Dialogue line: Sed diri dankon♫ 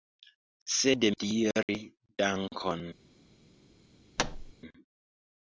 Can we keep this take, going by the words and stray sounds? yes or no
no